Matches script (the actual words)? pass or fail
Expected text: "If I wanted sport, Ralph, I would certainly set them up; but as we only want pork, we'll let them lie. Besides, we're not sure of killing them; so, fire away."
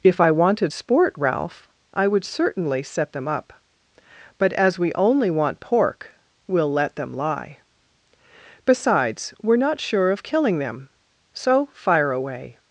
pass